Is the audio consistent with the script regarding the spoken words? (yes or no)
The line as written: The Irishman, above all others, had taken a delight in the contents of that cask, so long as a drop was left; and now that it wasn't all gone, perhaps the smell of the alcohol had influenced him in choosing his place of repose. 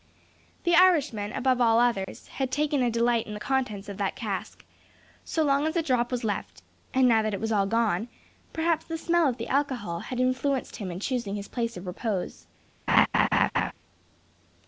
no